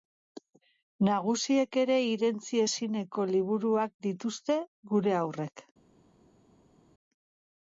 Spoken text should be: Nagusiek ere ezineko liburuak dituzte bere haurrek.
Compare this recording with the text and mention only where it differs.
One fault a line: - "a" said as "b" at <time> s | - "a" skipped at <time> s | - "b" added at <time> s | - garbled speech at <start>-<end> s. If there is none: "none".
- "irentsi" added at 2.1 s
- "bere" said as "gure" at 4.9 s